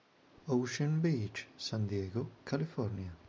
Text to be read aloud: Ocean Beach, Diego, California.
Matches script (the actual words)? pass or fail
fail